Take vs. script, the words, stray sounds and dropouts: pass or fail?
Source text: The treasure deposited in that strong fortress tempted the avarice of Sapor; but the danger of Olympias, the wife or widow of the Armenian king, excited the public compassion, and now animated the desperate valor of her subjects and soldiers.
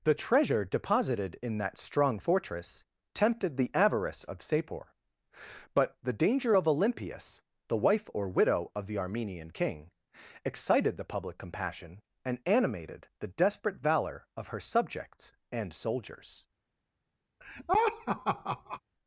fail